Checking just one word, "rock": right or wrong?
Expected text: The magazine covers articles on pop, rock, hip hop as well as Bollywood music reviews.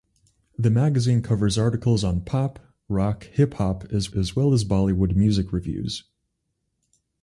right